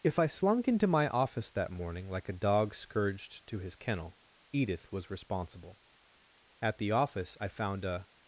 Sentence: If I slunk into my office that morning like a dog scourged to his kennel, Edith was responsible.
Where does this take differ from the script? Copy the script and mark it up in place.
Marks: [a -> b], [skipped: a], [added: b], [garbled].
If I slunk into my office that morning like a dog scourged to his kennel, Edith was responsible. [added: At the office I found a]